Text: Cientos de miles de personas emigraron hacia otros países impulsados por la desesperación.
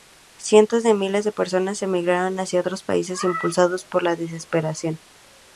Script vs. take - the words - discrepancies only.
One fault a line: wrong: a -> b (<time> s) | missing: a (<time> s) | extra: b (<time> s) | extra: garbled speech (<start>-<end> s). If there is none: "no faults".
no faults